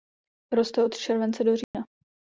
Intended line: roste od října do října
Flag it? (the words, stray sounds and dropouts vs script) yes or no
yes